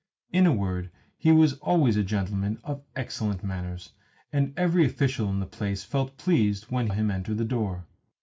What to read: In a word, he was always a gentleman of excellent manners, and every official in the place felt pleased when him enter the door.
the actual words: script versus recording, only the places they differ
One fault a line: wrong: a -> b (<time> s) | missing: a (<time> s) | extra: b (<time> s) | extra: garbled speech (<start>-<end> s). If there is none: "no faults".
no faults